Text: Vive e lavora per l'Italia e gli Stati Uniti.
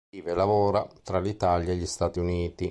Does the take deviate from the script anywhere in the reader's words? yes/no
yes